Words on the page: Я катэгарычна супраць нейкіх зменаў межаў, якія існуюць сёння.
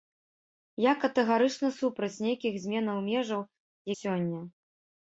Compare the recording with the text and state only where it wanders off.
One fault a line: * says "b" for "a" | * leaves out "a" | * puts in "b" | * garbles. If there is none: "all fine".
* leaves out "якія існуюць"